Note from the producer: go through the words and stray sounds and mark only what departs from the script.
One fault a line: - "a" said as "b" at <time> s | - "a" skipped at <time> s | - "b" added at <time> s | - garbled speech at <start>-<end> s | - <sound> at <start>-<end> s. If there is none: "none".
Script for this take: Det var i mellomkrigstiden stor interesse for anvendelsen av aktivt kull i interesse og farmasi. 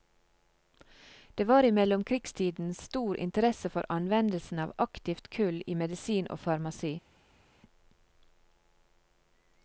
- "interesse" said as "medisin" at 5.8 s